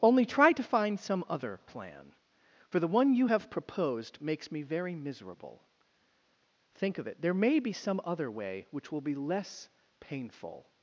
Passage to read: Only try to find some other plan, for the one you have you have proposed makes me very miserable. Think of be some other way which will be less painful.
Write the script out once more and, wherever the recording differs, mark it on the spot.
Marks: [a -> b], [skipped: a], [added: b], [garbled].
Only try to find some other plan, for the one you have [skipped: you have] proposed makes me very miserable. Think of [added: it there may] be some other way which will be less painful.